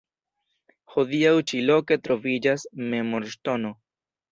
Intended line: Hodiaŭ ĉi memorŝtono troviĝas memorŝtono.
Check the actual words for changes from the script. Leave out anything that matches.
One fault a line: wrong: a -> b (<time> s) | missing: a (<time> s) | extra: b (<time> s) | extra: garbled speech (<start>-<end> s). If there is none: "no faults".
wrong: memorŝtono -> loke (1.7 s)